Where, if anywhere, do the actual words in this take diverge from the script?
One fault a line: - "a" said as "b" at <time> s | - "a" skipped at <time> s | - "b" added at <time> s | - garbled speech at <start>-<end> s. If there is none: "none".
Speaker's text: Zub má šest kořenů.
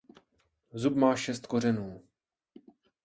none